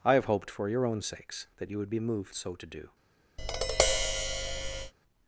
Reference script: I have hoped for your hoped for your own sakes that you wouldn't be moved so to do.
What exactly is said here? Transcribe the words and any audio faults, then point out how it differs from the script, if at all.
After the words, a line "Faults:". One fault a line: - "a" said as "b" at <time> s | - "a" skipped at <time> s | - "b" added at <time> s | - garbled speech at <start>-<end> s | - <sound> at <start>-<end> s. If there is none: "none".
I have hoped for your own sakes that you would be moved so to do.
Faults:
- "hoped for your" skipped at 0.8 s
- "wouldn't" said as "would" at 1.8 s
- tap at 3.4-4.9 s